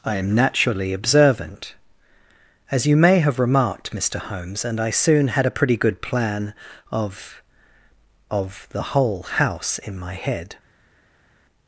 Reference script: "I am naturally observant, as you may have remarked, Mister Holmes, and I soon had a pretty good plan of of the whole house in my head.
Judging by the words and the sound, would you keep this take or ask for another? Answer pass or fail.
pass